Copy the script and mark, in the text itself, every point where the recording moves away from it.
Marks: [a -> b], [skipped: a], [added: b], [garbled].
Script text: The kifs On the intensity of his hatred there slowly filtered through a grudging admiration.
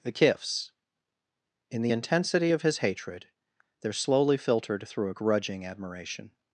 The kifs [On -> In] the intensity of his hatred there slowly filtered through a grudging admiration.